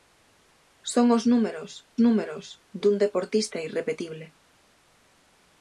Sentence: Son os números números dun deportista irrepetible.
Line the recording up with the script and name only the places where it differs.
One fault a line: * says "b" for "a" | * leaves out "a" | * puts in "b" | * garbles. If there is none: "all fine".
all fine